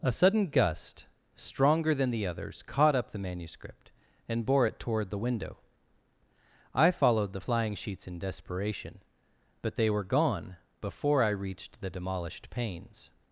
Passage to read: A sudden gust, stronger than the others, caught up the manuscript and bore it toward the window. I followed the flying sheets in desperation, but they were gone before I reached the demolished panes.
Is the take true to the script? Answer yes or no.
yes